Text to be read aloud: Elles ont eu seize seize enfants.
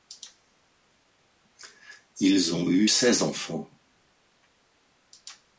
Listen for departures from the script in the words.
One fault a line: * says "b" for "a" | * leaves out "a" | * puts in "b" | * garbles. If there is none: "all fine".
* says "Ils" for "Elles"
* leaves out "seize"